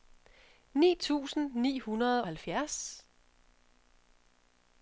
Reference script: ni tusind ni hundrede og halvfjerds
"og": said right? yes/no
no